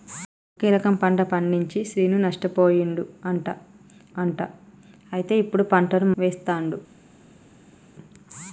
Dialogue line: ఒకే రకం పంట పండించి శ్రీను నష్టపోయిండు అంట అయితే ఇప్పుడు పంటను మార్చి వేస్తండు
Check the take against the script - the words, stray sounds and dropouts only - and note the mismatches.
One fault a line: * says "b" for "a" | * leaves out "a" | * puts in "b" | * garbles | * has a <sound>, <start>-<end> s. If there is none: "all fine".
* puts in "అంట"
* leaves out "మార్చి"